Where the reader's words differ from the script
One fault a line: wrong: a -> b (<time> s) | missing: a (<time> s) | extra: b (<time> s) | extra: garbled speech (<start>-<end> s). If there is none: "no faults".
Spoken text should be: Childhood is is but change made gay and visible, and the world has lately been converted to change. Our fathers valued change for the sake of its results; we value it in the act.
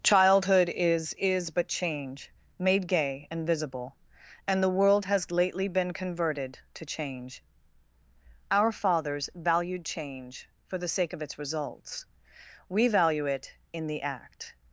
no faults